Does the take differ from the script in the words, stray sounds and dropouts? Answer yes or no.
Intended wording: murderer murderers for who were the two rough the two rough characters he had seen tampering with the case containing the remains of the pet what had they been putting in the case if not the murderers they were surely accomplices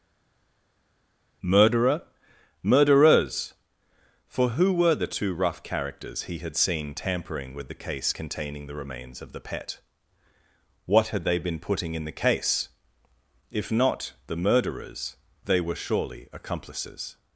yes